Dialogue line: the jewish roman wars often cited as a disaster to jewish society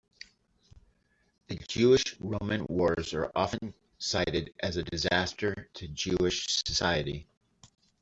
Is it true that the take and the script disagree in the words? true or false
true